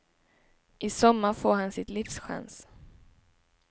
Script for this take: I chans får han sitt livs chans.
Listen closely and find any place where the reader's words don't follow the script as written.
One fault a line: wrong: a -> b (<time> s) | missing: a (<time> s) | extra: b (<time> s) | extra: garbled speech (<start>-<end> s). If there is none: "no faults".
wrong: chans -> sommar (0.9 s)